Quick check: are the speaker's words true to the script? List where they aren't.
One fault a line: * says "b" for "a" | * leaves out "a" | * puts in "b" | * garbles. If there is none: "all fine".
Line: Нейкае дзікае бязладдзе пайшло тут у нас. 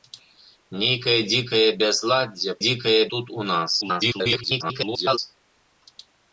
* says "дзікае" for "пайшло"
* garbles